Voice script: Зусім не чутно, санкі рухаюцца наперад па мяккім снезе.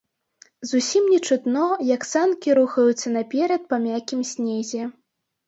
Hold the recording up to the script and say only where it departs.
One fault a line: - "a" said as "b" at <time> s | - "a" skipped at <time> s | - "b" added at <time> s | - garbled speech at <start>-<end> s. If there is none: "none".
- "як" added at 1.9 s